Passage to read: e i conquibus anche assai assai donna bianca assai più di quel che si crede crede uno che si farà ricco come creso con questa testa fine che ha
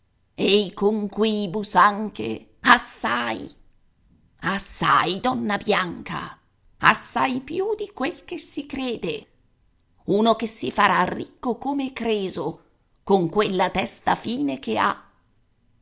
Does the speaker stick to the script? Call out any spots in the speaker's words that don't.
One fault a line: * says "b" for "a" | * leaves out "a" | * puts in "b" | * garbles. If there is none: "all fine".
* leaves out "crede"
* says "quella" for "questa"